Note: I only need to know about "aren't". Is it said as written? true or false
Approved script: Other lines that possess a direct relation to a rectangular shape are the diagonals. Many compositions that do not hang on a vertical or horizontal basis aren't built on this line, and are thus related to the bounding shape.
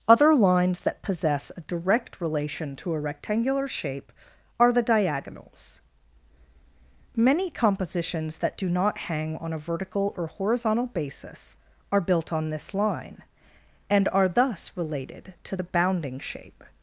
false